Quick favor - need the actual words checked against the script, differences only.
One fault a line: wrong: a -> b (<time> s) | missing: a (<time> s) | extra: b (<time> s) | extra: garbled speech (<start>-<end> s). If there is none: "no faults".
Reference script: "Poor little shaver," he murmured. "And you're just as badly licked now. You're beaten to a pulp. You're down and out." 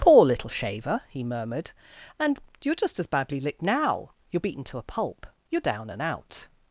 no faults